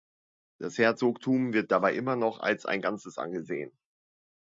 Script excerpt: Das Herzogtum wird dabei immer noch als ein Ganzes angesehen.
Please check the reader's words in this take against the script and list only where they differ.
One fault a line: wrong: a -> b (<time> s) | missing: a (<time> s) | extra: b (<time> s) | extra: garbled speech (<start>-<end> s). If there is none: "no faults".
no faults